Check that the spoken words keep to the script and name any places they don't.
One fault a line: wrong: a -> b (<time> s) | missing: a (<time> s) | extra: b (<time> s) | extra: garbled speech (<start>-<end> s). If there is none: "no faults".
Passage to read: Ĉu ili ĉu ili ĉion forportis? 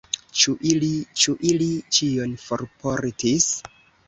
no faults